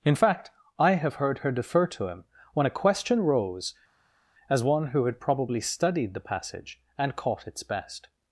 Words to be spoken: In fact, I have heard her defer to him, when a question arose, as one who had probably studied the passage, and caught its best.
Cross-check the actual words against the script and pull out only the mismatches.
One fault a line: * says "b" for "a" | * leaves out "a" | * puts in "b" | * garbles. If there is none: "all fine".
* says "rose" for "arose"